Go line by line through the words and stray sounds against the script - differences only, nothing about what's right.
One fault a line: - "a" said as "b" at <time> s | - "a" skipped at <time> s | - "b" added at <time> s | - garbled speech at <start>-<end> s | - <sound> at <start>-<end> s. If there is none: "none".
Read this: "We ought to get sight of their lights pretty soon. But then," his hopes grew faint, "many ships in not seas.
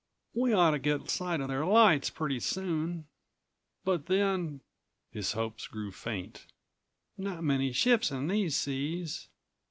- "not" added at 7.2 s
- "not" said as "these" at 8.3 s